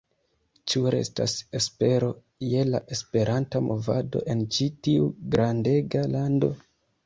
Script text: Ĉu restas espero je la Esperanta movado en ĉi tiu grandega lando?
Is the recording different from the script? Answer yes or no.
no